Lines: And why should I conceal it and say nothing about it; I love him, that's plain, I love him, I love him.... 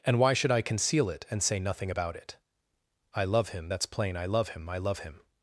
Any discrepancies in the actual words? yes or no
no